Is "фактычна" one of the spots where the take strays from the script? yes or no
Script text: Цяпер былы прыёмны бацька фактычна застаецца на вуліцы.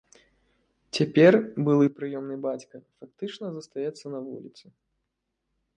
no